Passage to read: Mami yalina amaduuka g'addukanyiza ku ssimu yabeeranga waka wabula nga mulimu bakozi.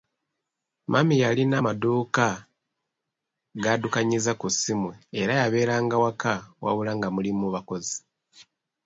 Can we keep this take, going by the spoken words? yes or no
no